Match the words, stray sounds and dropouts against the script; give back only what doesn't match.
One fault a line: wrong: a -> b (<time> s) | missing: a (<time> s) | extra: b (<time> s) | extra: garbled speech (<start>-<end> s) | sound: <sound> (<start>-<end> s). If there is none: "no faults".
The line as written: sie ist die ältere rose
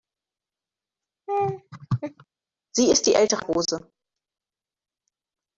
sound: laugh (1.3-2.2 s)